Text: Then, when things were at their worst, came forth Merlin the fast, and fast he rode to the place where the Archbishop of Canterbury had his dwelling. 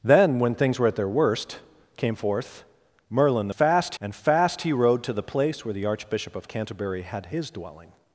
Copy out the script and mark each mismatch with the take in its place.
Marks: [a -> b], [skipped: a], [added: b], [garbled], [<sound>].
Then, when things were at their worst, came forth Merlin the fast, and fast he rode to the place where the Archbishop of Canterbury had his dwelling.